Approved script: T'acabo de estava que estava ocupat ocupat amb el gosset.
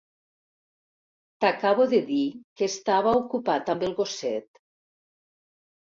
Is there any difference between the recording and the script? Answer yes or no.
yes